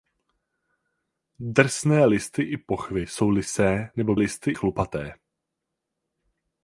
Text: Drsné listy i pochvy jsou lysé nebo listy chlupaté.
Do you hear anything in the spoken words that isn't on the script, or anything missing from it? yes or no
no